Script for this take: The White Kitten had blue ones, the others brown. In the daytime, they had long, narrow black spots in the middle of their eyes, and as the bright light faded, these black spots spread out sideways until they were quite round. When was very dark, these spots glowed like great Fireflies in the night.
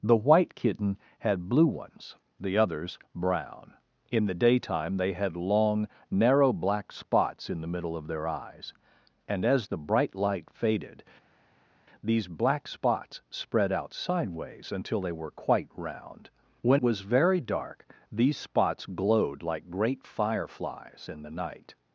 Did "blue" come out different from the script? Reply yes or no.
no